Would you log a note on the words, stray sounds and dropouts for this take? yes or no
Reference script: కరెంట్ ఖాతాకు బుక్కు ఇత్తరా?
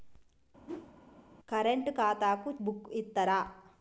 yes